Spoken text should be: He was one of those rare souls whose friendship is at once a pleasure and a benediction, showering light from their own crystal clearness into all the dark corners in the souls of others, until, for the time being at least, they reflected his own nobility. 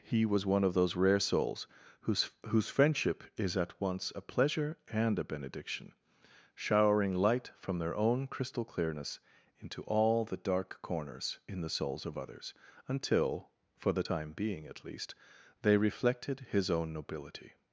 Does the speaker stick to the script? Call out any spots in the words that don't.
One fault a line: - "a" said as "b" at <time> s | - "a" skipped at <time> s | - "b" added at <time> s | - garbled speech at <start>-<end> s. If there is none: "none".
- "whose" added at 2.5 s